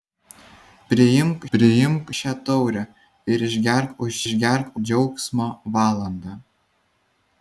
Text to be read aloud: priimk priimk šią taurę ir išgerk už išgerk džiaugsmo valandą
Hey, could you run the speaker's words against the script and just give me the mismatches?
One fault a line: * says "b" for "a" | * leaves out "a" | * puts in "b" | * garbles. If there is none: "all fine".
all fine